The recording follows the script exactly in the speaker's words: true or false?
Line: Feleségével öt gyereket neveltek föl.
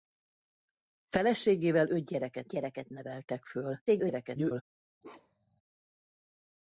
false